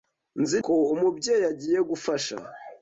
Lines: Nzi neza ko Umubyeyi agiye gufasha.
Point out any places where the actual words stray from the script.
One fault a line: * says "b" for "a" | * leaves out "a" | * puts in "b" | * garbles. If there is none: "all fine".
* leaves out "neza"